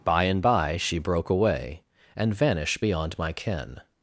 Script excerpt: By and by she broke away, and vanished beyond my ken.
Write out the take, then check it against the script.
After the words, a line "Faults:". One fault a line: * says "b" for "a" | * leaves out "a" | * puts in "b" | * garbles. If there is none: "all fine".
By and by she broke away, and vanished beyond my ken.
Faults:
all fine